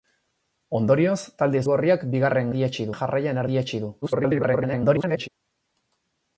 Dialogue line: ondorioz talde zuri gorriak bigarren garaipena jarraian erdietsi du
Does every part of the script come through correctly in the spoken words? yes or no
no